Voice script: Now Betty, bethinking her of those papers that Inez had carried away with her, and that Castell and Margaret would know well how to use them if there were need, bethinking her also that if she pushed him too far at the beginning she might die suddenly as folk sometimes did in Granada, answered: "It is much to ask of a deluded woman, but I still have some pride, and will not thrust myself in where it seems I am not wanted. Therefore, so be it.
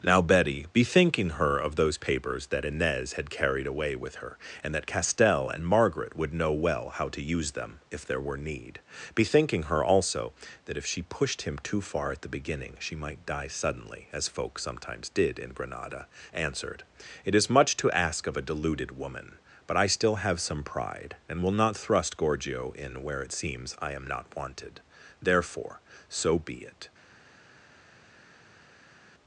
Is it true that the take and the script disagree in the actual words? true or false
true